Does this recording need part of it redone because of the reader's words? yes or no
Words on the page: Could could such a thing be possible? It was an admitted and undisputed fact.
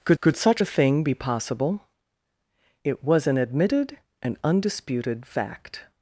no